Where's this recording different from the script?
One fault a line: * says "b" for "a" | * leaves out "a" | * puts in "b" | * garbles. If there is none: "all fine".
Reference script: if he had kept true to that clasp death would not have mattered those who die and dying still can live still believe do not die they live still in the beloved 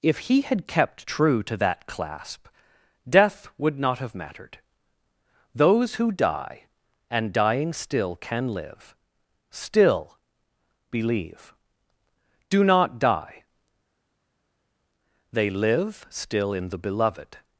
all fine